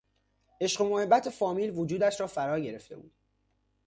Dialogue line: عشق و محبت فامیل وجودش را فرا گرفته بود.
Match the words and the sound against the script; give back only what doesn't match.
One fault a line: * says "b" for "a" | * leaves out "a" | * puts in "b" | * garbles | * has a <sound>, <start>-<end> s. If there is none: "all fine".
all fine